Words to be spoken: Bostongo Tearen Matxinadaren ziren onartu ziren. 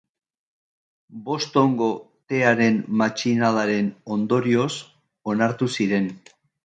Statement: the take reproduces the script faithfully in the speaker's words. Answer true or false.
false